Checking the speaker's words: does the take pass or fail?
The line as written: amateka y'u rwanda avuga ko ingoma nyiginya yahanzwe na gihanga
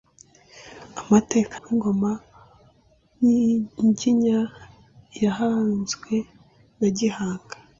fail